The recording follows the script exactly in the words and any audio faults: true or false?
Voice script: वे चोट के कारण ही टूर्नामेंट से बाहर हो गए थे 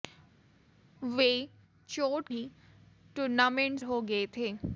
false